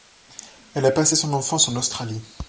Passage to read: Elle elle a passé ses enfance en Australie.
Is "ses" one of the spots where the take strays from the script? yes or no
yes